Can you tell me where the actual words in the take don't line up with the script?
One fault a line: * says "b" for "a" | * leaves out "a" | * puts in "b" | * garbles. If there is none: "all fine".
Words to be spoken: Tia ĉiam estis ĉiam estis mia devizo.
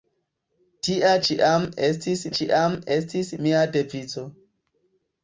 all fine